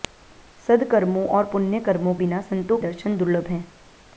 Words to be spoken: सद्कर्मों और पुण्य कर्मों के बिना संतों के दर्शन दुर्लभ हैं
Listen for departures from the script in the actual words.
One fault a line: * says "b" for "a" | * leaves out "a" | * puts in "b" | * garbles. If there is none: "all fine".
* leaves out "के"
* leaves out "के"